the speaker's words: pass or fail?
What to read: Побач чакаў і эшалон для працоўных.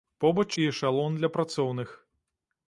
fail